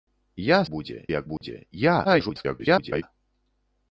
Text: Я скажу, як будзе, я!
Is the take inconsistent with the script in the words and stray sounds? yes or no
yes